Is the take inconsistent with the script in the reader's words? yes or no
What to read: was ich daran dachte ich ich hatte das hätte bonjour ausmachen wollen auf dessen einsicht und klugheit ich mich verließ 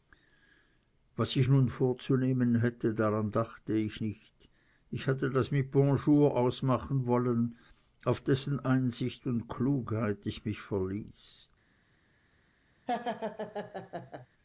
yes